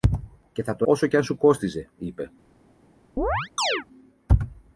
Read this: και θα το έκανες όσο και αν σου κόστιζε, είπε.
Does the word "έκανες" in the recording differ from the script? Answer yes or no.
yes